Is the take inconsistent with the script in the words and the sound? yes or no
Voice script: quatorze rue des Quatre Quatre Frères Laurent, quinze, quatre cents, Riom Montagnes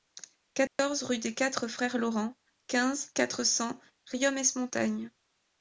yes